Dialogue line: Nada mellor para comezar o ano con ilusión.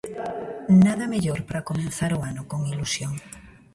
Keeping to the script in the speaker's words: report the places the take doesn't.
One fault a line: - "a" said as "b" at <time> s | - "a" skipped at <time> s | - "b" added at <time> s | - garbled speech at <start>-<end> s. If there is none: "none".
none